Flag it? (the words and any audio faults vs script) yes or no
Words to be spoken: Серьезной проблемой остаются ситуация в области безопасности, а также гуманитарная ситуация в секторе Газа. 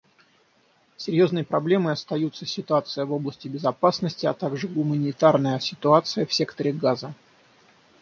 no